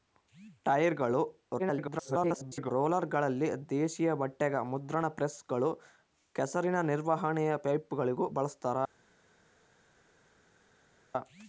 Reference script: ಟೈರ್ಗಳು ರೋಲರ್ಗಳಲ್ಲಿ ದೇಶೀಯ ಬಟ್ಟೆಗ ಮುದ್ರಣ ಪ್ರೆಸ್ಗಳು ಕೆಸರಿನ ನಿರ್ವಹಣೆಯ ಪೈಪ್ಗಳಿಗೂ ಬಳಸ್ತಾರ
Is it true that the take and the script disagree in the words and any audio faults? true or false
true